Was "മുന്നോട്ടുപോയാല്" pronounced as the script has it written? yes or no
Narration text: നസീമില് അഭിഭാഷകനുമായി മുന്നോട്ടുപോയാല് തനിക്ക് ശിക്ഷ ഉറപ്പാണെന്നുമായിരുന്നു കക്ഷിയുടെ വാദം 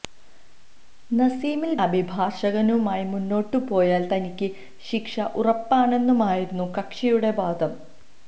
yes